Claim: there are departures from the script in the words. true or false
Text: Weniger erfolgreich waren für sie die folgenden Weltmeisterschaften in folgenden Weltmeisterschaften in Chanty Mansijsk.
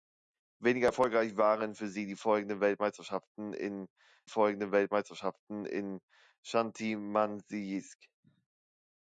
false